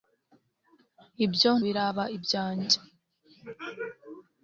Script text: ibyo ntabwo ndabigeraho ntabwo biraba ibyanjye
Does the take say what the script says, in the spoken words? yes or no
no